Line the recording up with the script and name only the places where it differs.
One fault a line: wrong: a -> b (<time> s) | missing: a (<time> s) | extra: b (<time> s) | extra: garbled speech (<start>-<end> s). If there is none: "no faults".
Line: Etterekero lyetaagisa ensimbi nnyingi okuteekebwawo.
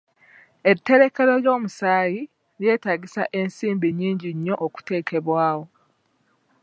extra: ly'omusaayi (1.4 s)
extra: nnyo (4.3 s)